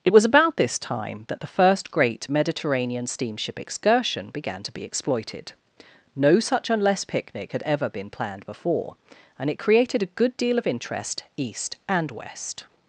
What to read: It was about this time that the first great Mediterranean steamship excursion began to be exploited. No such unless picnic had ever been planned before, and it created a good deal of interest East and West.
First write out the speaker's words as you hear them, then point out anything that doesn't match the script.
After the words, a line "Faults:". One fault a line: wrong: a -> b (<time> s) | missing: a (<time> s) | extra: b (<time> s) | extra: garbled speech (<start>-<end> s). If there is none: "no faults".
It was about this time that the first great Mediterranean steamship excursion began to be exploited. No such unless picnic had ever been planned before, and it created a good deal of interest East and West.
Faults:
no faults